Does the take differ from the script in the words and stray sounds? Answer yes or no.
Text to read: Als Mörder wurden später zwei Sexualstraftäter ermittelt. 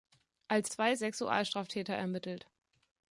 yes